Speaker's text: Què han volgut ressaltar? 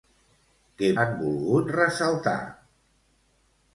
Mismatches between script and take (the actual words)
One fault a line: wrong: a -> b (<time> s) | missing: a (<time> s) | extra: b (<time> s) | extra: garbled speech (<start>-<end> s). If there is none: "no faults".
no faults